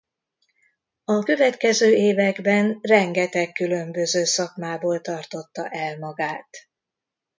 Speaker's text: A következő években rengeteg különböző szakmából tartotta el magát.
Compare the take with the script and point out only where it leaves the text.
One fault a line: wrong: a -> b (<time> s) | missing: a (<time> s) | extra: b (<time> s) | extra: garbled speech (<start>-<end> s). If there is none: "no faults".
no faults